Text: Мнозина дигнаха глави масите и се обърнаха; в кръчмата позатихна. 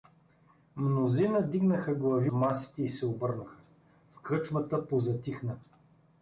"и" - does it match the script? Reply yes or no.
yes